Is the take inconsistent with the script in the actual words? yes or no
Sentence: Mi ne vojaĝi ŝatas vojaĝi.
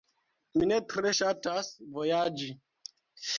yes